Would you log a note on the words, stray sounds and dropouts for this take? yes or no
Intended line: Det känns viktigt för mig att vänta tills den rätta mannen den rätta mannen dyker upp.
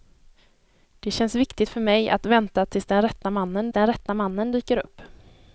no